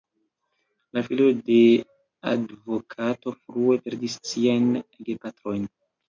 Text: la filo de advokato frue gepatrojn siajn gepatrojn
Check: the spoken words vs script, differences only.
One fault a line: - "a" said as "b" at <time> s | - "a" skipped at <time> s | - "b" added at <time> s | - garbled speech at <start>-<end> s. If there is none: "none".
- "gepatrojn" said as "perdis" at 3.9 s